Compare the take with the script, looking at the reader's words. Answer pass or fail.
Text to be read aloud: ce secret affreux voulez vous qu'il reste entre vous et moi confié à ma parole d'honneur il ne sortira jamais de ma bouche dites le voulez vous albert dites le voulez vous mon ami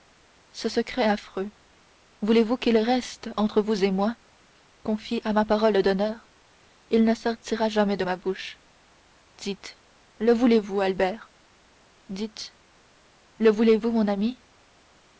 pass